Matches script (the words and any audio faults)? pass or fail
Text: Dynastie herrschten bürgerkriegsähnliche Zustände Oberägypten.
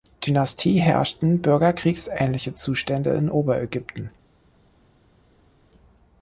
fail